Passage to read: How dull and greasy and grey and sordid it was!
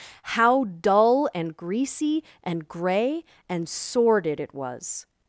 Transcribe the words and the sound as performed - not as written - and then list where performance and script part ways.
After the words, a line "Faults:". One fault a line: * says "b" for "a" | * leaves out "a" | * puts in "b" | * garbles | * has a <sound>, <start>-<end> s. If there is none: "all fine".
How dull and greasy and grey and sordid it was!
Faults:
all fine